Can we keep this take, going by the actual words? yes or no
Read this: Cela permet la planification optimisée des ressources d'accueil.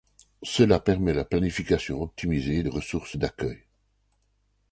yes